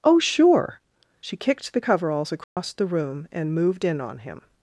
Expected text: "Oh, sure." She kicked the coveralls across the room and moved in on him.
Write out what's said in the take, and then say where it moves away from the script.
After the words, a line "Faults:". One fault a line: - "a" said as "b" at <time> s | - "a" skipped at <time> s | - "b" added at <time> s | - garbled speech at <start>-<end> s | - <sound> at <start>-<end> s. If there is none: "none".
"Oh, sure." She kicked the coveralls across the room and moved in on him.
Faults:
- dropout at 2.4-2.6 s